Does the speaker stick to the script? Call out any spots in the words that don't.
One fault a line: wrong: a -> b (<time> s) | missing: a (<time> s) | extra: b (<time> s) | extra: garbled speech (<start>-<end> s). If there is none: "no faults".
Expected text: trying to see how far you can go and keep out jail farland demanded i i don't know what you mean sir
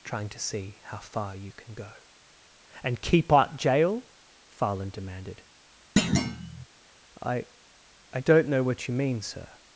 no faults